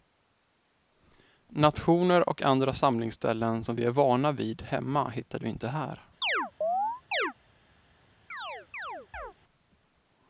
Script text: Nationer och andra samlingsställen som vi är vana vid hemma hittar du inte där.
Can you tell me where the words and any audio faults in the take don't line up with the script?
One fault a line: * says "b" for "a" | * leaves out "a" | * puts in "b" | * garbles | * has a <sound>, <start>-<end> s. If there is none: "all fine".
* says "här" for "där"
* has a chirp, 6.2-7.3 s
* has a chirp, 8.3-9.3 s